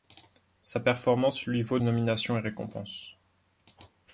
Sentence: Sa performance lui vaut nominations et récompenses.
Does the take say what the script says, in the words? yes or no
yes